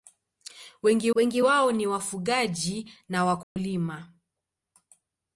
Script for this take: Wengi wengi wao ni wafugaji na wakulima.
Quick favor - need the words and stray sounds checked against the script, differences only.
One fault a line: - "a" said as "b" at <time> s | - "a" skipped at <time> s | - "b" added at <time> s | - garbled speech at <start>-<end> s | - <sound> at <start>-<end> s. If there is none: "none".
- dropout at 3.4-3.6 s